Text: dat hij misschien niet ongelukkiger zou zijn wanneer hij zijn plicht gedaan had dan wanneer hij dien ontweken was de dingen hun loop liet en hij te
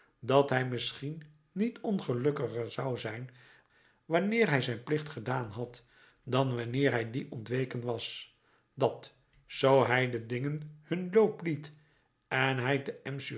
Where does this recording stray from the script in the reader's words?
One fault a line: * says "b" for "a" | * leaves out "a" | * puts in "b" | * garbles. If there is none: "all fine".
* puts in "dat zoo hij"